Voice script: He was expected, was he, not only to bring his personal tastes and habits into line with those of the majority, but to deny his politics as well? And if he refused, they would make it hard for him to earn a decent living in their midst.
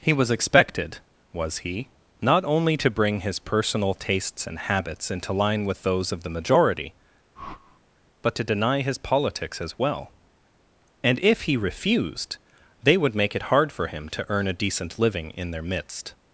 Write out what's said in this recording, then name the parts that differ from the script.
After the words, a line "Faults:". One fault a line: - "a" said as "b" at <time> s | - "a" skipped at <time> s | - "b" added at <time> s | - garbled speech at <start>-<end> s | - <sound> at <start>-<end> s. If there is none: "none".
He was expected, was he, not only to bring his personal tastes and habits into line with those of the majority, but to deny his politics as well? And if he refused, they would make it hard for him to earn a decent living in their midst.
Faults:
- whoosh at 7.4-7.8 s